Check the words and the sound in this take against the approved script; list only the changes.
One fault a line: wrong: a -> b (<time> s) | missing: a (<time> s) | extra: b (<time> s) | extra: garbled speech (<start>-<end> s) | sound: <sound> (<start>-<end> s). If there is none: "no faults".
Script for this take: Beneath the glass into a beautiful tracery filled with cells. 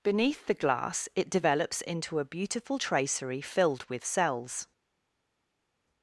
extra: it develops (1.1 s)